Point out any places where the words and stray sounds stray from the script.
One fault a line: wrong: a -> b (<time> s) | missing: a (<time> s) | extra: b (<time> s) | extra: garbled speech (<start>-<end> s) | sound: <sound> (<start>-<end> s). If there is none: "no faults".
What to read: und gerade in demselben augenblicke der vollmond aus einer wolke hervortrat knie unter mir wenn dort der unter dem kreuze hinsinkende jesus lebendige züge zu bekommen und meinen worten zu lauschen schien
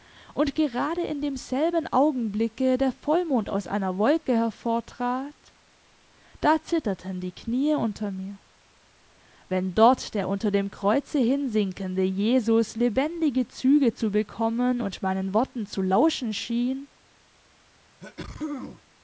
extra: da zitterten die (6.4 s)
sound: sneeze (18.0-18.8 s)